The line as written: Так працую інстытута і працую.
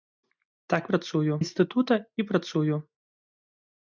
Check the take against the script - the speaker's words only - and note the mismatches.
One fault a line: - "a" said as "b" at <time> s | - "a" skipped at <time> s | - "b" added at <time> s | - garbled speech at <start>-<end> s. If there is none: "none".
none